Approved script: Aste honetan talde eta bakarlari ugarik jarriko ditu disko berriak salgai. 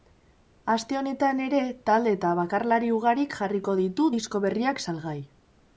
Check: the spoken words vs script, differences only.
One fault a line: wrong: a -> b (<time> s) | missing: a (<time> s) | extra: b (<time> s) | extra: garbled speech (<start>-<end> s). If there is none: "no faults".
extra: ere (1.5 s)